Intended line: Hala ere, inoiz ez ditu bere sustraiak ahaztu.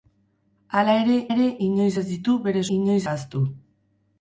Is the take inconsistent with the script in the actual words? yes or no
yes